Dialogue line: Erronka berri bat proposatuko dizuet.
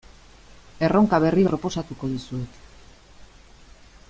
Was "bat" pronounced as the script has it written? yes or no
no